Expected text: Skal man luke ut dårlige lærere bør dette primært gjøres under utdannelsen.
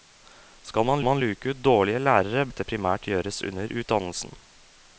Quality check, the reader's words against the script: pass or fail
fail